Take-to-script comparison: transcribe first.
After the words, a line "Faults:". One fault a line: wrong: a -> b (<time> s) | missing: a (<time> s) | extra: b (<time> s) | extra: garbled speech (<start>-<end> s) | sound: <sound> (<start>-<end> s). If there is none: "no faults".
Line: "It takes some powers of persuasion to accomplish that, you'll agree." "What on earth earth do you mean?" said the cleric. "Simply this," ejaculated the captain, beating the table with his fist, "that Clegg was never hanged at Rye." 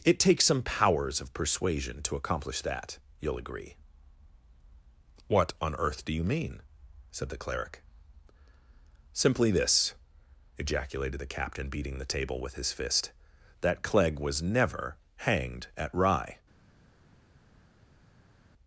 "It takes some powers of persuasion to accomplish that, you'll agree." "What on earth do you mean?" said the cleric. "Simply this," ejaculated the captain, beating the table with his fist, "that Clegg was never hanged at Rye."
Faults:
missing: earth (6.1 s)